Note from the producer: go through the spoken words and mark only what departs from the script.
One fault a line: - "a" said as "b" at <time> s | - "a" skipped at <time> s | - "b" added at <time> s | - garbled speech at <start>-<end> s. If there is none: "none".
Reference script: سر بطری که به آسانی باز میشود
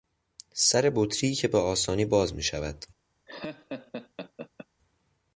none